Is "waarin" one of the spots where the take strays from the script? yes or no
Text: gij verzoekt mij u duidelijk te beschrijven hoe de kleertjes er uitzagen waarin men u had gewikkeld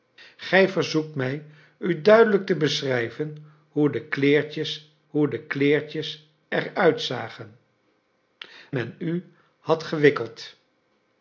yes